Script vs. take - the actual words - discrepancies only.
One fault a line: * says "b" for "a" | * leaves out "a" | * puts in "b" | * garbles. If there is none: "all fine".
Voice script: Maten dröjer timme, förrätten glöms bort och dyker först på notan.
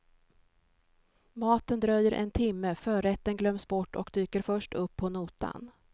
* puts in "en"
* puts in "upp"